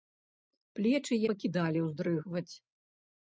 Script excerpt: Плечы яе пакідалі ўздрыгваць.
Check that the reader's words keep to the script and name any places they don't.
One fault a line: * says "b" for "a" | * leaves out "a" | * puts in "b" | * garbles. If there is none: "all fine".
* leaves out "яе"